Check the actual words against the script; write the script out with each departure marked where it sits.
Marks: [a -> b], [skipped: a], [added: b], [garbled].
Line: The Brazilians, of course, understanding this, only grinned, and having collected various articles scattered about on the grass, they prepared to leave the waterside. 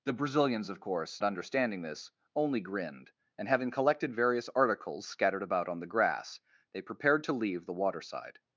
The Brazilians, of course, understanding this, only grinned, and having collected various articles scattered about on the grass, they prepared to leave the waterside.